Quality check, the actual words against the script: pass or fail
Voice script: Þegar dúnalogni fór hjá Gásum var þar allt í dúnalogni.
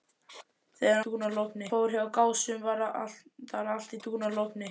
pass